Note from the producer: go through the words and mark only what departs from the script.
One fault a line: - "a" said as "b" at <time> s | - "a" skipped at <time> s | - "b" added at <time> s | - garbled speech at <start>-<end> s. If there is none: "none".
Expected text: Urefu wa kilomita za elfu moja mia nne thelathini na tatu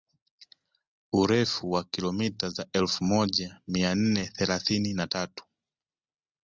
none